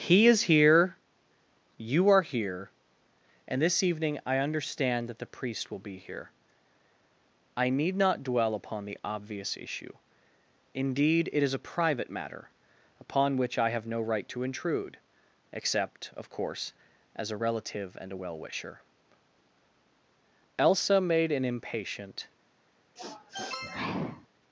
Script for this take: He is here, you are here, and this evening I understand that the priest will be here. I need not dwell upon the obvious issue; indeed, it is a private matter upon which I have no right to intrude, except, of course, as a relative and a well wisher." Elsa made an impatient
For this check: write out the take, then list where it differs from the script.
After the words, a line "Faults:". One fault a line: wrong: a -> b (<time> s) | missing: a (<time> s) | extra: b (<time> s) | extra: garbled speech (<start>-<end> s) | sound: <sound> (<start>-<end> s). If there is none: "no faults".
He is here, you are here, and this evening I understand that the priest will be here. I need not dwell upon the obvious issue; indeed, it is a private matter upon which I have no right to intrude, except, of course, as a relative and a well wisher." Elsa made an impatient
Faults:
sound: sniff (23.0-24.3 s)